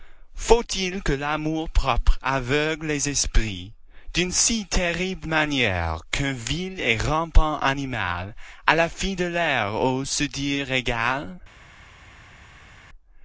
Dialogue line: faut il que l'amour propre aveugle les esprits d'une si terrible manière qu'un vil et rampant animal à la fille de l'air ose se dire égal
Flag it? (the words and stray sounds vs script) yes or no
no